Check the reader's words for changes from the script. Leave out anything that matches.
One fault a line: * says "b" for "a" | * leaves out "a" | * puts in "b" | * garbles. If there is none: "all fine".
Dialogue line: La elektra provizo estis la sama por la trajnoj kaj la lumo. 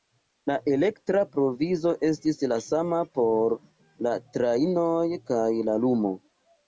all fine